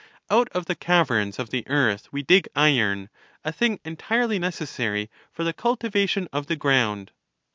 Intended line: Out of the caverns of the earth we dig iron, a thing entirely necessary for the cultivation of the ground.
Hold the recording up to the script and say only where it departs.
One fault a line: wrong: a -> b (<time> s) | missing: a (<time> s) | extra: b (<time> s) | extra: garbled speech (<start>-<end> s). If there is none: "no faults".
no faults